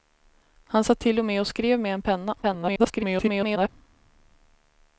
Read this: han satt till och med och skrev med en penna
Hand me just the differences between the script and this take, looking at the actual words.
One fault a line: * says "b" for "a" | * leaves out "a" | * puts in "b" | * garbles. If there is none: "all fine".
* garbles